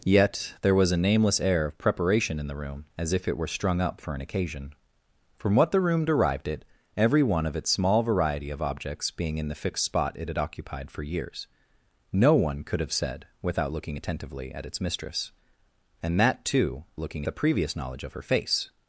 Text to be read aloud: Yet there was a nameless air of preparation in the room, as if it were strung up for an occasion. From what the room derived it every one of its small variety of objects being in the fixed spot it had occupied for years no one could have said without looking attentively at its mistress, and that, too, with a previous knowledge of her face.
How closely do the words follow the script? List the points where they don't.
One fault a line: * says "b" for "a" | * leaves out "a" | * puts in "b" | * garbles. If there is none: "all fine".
* says "looking" for "with"